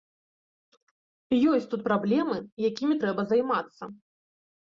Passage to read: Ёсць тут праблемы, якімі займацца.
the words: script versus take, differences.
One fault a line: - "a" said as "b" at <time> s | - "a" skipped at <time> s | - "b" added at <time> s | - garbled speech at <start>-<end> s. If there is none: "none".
- "трэба" added at 3.0 s